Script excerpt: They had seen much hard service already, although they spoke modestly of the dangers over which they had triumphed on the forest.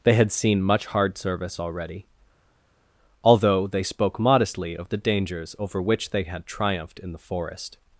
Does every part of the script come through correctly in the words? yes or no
no